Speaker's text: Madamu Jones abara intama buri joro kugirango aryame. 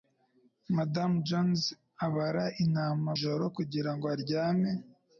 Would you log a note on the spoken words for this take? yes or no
yes